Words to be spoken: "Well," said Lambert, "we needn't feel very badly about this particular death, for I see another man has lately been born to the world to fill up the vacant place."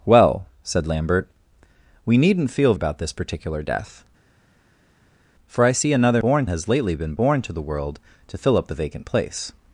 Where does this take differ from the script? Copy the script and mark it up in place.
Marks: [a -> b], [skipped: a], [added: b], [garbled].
"Well," said Lambert, "we needn't feel [skipped: very badly] about this particular death, for I see another [man -> born] has lately been born to the world to fill up the vacant place."